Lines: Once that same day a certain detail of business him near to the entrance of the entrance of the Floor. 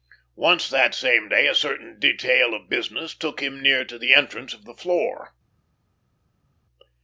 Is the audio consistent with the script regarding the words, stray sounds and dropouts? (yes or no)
no